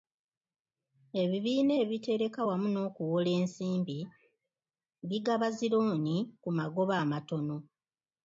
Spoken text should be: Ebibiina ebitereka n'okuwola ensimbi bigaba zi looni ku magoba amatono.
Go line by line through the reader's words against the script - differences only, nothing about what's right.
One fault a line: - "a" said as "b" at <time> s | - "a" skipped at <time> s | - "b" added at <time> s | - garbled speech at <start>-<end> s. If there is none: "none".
- "wamu" added at 2.5 s